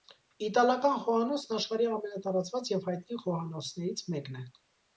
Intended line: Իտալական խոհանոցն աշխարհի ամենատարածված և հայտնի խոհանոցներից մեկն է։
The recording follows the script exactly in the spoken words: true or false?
true